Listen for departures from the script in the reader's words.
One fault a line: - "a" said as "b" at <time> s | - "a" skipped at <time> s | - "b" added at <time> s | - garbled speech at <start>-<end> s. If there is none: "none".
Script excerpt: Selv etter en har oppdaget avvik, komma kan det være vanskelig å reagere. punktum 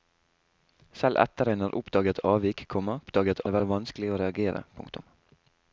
- "kan" said as "oppdaget" at 3.0 s